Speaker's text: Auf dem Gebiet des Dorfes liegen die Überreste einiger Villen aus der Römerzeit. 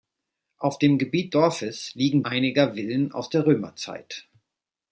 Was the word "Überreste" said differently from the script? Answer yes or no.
yes